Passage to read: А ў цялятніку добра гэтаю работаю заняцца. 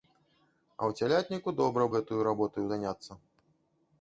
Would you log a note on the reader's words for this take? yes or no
no